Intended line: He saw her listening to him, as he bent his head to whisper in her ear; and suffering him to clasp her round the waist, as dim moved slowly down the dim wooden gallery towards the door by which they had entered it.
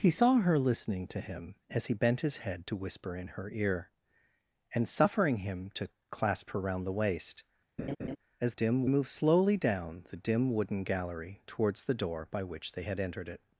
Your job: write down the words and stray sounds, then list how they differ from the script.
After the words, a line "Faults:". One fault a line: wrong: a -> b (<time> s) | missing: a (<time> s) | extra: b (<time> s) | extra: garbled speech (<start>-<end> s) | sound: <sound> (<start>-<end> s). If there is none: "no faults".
He saw her listening to him, as he bent his head to whisper in her ear; and suffering him to clasp her round the waist, as dim moved slowly down the dim wooden gallery towards the door by which they had entered it.
Faults:
sound: laugh (7.8-8.2 s)